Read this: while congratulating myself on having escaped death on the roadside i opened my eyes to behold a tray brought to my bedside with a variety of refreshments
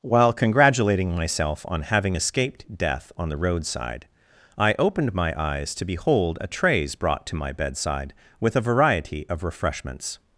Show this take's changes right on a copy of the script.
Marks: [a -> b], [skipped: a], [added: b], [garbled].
while congratulating myself on having escaped death on the roadside i opened my eyes to behold a [tray -> trays] brought to my bedside with a variety of refreshments